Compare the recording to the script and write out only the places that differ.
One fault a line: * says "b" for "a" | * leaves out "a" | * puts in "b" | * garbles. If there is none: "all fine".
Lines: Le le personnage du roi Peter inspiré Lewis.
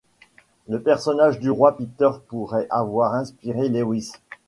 * leaves out "le"
* puts in "pourrait avoir"